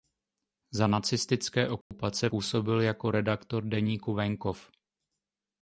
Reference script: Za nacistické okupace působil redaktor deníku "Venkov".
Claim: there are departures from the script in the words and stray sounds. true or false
true